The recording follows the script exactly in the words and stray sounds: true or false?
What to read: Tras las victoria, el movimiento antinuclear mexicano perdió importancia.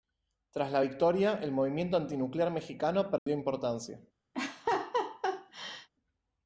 false